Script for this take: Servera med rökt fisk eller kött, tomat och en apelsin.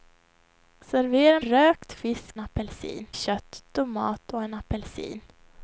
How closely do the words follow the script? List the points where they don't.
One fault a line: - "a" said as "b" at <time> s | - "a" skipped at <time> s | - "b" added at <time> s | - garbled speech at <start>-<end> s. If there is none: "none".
- "med" skipped at 1.4 s
- "eller" said as "apelsin" at 2.4 s